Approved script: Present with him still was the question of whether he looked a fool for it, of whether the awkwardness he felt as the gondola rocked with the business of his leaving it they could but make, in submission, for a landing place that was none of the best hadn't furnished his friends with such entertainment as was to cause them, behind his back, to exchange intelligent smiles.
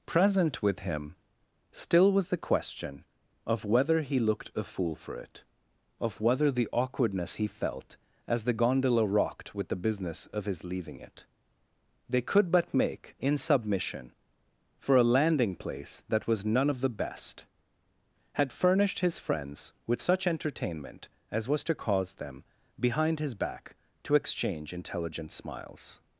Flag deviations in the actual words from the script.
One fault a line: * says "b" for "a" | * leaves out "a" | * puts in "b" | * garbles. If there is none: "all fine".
* says "had" for "hadn't"